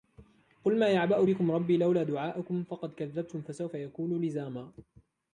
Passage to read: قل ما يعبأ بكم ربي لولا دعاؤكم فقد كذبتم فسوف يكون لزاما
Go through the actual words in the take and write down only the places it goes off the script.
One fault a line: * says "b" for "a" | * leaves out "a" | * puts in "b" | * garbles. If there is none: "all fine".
all fine